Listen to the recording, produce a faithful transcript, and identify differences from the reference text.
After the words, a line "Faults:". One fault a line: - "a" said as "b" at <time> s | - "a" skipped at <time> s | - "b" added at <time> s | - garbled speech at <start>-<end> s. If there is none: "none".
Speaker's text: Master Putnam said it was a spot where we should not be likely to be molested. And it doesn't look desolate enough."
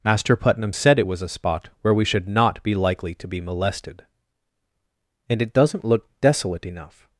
Master Putnam said it was a spot where we should not be likely to be molested. And it doesn't look desolate enough."
Faults:
none